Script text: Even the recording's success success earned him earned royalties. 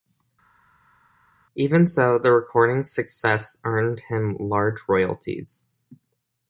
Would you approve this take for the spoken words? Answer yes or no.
no